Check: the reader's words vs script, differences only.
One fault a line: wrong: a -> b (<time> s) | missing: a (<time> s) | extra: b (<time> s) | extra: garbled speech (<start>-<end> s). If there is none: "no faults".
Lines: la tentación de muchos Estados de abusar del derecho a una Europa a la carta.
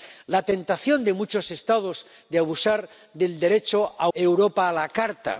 missing: una (4.1 s)